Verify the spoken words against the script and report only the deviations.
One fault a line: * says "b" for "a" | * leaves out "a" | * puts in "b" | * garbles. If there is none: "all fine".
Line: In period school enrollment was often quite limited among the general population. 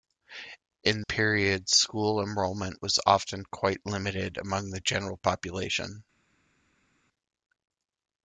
all fine